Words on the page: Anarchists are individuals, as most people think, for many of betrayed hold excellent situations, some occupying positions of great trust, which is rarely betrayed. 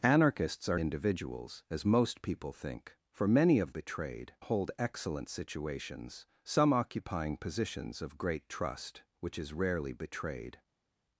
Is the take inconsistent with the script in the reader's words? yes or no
no